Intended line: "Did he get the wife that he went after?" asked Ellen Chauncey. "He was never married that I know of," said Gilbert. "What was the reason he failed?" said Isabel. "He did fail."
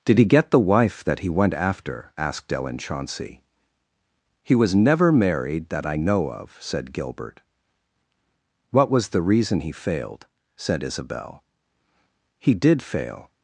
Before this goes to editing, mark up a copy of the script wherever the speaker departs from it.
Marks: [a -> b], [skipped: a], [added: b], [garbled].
"Did he get the wife that he went after?" asked Ellen Chauncey. "He was never married that I know of," said Gilbert. "What was the reason he failed?" said Isabel. "He did fail."